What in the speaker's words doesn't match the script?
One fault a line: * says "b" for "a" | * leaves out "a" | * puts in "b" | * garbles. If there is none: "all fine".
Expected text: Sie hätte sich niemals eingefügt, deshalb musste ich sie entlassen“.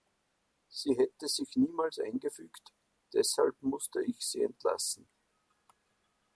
all fine